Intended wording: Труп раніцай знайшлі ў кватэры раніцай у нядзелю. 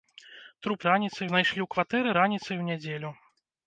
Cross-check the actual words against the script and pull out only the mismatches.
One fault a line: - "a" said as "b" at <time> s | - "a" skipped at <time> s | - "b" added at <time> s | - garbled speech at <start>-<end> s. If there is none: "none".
none